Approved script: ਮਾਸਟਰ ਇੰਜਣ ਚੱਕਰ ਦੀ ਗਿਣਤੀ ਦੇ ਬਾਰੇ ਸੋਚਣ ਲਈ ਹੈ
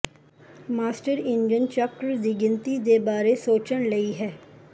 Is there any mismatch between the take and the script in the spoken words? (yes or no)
no